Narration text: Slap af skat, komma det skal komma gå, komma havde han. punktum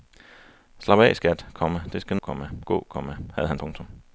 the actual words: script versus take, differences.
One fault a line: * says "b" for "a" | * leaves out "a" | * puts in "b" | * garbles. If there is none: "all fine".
all fine